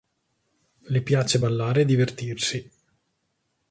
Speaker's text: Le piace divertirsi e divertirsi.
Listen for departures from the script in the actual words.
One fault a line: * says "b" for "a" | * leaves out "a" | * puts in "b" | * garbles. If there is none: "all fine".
* says "ballare" for "divertirsi"